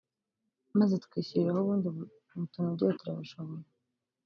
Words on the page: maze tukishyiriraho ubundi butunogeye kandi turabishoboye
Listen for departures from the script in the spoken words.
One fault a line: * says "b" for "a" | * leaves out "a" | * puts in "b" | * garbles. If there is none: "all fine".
* leaves out "kandi"